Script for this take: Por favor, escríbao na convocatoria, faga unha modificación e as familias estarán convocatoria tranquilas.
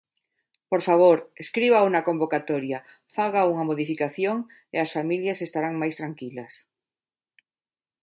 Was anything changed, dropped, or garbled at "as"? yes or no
no